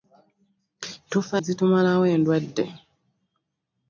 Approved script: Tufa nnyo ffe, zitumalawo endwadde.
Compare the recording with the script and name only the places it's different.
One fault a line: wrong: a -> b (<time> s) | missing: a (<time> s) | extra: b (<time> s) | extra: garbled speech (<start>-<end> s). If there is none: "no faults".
missing: nnyo ffe (1.4 s)